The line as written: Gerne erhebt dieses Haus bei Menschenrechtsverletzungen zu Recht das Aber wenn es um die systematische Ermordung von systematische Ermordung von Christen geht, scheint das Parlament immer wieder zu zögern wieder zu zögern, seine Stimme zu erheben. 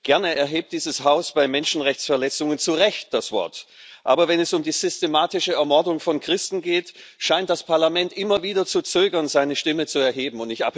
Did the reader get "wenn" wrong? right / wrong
right